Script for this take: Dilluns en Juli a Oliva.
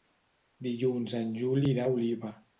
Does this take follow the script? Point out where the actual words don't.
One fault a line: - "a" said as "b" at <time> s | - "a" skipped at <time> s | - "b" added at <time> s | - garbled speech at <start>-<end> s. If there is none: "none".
- "irà" added at 1.8 s